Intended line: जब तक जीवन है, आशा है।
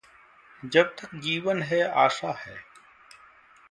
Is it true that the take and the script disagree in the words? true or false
false